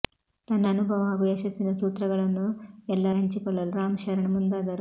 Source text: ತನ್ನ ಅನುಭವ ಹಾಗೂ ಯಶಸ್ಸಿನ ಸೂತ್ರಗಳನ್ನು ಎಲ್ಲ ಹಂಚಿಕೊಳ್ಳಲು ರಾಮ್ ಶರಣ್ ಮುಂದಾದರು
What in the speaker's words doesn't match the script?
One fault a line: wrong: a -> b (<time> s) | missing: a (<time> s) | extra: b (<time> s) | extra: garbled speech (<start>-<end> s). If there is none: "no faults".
no faults